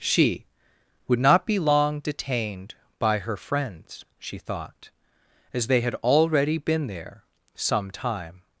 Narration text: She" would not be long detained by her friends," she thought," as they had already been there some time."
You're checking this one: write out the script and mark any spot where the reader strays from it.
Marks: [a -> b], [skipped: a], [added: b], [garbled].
She" would not be long detained by her friends," she thought," as they had already been there some time."